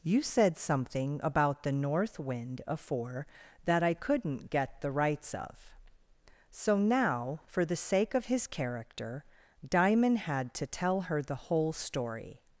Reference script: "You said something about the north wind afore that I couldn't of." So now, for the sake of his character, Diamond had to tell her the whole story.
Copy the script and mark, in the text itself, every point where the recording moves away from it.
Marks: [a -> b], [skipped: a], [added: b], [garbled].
"You said something about the north wind afore that I couldn't [added: get the rights] of." So now, for the sake of his character, Diamond had to tell her the whole story.